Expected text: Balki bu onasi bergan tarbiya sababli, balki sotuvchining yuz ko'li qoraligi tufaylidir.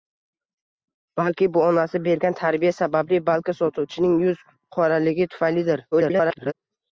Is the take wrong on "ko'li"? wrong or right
wrong